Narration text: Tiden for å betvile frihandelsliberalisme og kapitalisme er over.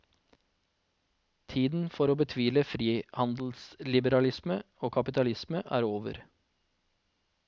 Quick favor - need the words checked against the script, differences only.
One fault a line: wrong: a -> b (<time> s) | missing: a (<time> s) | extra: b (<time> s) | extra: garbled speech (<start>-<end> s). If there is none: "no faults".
no faults